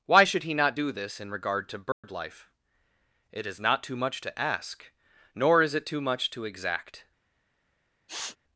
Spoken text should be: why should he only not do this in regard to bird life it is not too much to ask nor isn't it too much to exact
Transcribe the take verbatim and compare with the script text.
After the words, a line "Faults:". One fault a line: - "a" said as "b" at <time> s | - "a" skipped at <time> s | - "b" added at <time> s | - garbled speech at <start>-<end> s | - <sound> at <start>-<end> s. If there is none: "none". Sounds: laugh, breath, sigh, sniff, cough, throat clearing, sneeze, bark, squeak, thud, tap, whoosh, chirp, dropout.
why should he not do this in regard to bird life it is not too much to ask nor is it too much to exact
Faults:
- "only" skipped at 0.5 s
- dropout at 1.9-2.0 s
- "isn't" said as "is" at 5.6 s
- sniff at 8.1-8.4 s